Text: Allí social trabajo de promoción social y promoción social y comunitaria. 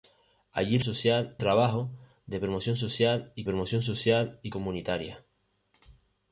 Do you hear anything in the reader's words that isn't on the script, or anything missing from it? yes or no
no